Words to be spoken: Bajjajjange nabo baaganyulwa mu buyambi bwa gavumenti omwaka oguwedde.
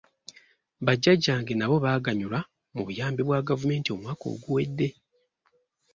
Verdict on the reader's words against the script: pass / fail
pass